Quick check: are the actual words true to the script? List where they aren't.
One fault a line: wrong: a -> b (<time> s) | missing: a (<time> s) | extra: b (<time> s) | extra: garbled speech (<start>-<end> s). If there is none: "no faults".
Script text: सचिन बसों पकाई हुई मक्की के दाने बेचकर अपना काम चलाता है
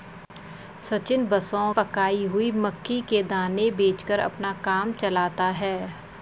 no faults